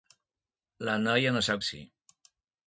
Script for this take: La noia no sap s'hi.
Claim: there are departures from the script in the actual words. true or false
false